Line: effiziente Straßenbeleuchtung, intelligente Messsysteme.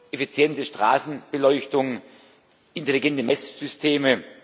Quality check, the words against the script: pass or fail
pass